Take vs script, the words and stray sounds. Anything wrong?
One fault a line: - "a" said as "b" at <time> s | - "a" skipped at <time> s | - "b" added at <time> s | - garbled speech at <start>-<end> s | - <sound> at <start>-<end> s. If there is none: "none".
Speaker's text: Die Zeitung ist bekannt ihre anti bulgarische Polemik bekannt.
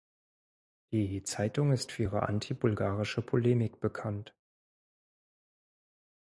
- "bekannt" said as "für" at 1.9 s